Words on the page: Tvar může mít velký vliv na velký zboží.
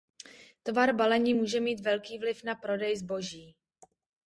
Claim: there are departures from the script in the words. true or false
true